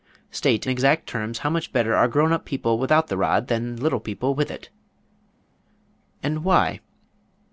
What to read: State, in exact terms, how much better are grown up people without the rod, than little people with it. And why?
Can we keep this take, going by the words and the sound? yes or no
no